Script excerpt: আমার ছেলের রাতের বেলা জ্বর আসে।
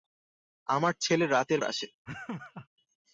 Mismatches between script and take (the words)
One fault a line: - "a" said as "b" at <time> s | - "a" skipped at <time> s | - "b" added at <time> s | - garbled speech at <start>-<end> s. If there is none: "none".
- "বেলা জ্বর" skipped at 1.6 s